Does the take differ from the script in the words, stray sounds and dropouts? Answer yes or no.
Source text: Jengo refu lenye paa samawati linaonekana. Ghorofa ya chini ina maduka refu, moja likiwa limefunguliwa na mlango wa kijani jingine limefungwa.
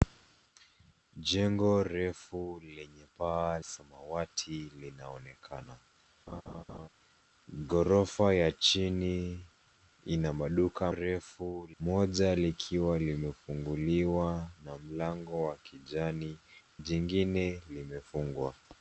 yes